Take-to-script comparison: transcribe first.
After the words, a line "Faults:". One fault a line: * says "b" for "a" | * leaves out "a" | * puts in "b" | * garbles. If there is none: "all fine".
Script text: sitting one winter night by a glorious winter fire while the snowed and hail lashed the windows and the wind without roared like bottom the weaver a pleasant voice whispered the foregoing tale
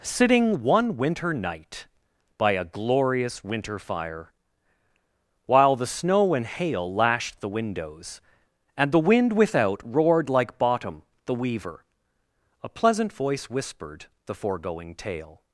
sitting one winter night by a glorious winter fire while the snow and hail lashed the windows and the wind without roared like bottom the weaver a pleasant voice whispered the foregoing tale
Faults:
* says "snow" for "snowed"